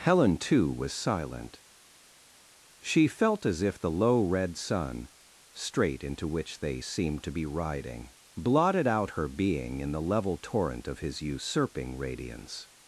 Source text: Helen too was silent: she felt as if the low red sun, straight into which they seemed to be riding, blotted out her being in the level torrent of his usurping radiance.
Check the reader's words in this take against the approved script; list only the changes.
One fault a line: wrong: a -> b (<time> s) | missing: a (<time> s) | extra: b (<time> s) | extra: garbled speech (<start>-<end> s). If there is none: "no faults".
no faults